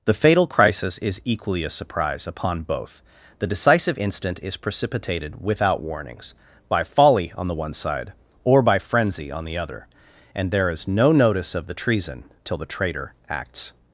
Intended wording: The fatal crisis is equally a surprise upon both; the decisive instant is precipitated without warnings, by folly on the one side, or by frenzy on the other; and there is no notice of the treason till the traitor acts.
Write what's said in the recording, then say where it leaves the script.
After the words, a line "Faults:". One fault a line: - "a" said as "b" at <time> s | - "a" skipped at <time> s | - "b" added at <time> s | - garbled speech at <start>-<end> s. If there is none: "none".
The fatal crisis is equally a surprise upon both; the decisive instant is precipitated without warnings, by folly on the one side, or by frenzy on the other; and there is no notice of the treason till the traitor acts.
Faults:
none